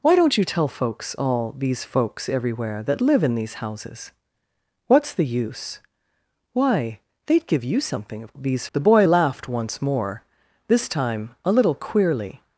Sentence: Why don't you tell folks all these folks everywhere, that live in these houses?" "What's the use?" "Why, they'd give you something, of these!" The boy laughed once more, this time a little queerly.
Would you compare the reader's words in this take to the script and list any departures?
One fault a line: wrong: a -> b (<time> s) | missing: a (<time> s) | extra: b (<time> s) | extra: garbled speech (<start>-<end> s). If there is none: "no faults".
no faults